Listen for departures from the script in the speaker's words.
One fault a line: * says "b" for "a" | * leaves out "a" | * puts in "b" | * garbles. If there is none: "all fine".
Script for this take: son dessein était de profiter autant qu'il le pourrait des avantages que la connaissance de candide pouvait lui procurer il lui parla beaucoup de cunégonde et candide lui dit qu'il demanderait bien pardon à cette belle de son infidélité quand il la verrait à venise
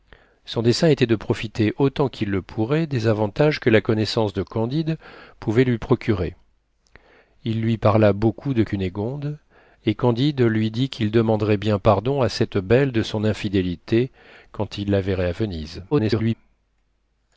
* garbles